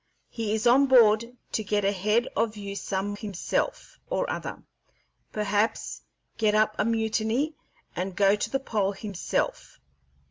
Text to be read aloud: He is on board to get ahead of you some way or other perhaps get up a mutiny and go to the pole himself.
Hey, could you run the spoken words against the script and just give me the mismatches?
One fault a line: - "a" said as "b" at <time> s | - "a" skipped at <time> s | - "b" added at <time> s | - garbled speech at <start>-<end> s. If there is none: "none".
- "way" said as "himself" at 3.1 s